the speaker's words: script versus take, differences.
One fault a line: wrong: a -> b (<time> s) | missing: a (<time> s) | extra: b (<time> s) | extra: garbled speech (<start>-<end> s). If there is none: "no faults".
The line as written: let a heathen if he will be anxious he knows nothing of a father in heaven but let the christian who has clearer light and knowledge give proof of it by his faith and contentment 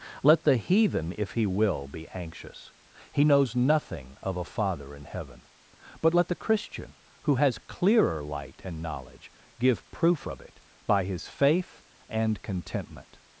wrong: a -> the (0.4 s)